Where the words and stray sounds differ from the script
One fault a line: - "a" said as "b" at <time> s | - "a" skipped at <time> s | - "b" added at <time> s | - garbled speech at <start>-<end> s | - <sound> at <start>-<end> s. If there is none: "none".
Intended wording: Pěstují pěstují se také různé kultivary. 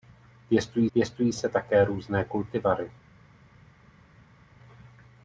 none